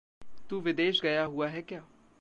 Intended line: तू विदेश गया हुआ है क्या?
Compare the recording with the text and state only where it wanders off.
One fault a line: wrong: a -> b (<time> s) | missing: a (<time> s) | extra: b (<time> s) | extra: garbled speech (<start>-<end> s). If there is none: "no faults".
no faults